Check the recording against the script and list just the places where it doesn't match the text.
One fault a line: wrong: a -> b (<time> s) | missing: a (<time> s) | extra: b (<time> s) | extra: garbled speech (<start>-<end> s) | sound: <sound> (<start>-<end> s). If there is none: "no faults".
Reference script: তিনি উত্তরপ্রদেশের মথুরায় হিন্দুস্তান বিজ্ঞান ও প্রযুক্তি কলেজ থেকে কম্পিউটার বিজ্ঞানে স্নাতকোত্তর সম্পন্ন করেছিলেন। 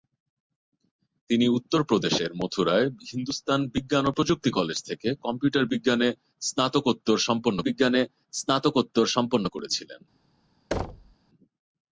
extra: বিজ্ঞানে স্নাতকোত্তর সম্পন্ন (7.6 s)
sound: thud (10.7-11.2 s)